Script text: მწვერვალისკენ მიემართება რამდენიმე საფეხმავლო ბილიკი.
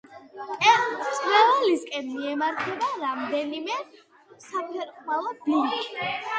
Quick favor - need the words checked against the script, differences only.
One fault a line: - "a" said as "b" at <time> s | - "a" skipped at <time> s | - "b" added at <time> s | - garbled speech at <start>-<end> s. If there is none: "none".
none